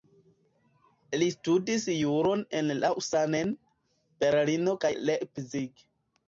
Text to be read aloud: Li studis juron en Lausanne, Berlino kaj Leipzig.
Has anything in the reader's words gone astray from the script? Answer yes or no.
no